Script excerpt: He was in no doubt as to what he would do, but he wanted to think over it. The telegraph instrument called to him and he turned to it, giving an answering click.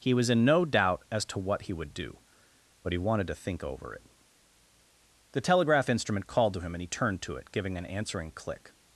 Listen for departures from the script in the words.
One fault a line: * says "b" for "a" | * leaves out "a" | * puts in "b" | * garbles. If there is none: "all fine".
all fine